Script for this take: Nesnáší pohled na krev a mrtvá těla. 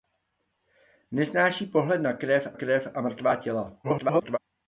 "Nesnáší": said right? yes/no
yes